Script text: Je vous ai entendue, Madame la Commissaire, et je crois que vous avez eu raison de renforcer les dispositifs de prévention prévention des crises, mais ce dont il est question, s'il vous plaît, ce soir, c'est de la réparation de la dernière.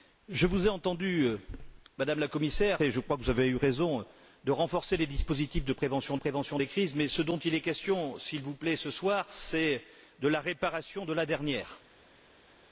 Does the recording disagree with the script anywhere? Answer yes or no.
no